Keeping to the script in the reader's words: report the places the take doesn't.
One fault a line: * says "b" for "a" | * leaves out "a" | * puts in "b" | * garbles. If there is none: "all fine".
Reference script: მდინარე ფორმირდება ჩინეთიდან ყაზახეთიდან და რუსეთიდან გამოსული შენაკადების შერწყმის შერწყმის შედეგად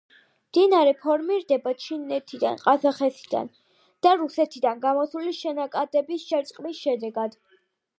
* leaves out "შერწყმის"